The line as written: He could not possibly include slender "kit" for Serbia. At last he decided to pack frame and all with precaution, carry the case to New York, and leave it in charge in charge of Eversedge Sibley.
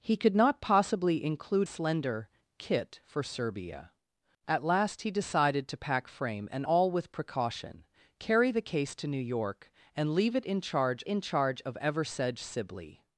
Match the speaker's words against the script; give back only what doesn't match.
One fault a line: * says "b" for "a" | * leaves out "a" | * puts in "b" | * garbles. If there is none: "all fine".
all fine